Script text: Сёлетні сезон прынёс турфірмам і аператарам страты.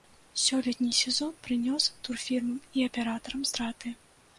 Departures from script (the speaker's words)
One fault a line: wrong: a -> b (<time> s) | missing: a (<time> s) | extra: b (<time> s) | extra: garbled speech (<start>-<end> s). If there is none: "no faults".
no faults